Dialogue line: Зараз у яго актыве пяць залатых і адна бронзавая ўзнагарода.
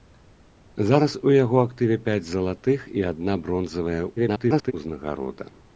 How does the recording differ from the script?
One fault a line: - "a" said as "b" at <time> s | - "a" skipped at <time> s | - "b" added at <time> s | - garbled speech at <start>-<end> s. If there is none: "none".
- garbled speech at 4.2-4.7 s